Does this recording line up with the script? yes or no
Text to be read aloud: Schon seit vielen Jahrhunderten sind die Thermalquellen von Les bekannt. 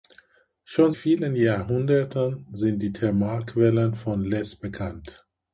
no